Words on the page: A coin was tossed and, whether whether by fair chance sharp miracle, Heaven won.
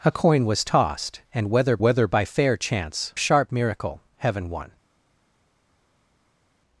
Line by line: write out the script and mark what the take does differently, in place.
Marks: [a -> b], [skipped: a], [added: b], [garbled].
A coin was tossed and, whether whether by fair chance sharp miracle, Heaven won.